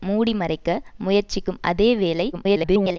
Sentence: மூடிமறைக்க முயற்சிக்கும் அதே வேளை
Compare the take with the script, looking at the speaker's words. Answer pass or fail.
fail